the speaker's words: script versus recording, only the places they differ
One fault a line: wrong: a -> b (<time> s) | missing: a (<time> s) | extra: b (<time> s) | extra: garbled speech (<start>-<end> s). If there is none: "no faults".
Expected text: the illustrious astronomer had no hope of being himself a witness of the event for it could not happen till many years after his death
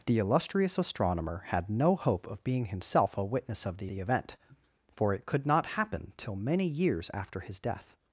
extra: the (3.9 s)